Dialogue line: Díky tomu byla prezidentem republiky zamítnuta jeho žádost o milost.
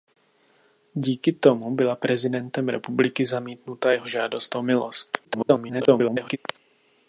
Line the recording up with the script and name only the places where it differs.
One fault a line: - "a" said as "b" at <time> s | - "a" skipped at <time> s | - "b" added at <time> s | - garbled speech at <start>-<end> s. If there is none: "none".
- garbled speech at 5.2-6.4 s